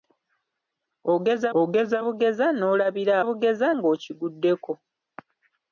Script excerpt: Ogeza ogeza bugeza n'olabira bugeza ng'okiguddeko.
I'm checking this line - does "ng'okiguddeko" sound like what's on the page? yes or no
yes